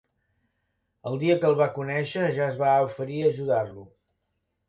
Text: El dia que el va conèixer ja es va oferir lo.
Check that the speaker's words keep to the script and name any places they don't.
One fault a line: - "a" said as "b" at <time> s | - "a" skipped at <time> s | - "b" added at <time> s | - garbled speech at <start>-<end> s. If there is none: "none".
- "a ajudar" added at 3.2 s